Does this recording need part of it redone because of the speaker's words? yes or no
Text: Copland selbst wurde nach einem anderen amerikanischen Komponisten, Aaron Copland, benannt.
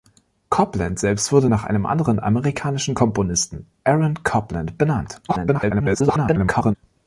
yes